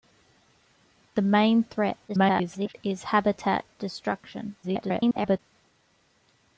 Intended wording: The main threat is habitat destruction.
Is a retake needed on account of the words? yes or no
yes